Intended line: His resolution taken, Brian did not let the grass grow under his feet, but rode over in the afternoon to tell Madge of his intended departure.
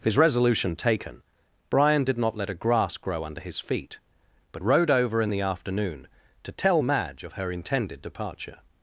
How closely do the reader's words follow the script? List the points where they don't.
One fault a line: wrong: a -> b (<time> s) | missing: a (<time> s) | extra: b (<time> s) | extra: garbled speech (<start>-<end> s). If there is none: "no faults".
wrong: the -> a (2.5 s)
wrong: his -> her (7.3 s)